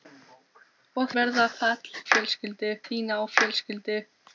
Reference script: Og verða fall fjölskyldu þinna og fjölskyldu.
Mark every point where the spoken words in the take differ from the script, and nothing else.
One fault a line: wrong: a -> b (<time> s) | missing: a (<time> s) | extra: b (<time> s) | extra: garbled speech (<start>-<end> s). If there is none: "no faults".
no faults